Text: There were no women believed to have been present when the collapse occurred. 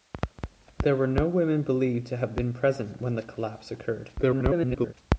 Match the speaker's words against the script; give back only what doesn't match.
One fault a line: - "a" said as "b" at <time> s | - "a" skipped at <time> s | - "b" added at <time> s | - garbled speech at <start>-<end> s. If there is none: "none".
- garbled speech at 4.2-4.9 s